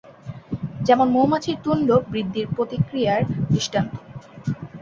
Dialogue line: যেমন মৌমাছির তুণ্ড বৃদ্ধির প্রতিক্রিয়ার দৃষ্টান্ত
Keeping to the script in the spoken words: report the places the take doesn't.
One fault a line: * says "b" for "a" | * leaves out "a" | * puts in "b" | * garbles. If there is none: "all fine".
all fine